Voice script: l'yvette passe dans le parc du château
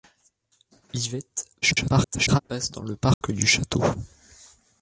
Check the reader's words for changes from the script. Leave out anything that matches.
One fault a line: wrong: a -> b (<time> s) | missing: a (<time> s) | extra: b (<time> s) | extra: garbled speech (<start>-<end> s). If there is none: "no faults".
extra: garbled speech (1.6-2.4 s)